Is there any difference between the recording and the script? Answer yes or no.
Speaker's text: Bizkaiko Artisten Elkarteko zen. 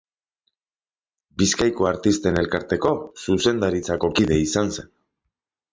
yes